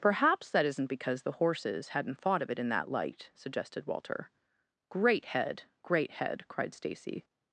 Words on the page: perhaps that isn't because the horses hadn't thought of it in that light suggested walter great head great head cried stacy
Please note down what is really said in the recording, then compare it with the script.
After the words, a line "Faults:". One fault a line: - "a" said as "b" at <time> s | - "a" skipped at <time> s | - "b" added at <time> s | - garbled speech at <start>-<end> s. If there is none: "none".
perhaps that isn't because the horses hadn't thought of it in that light suggested walter great head great head cried stacy
Faults:
none